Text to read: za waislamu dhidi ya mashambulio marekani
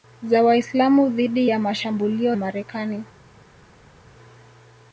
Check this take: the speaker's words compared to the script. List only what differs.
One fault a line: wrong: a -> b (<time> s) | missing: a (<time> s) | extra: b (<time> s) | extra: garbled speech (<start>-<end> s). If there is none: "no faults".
no faults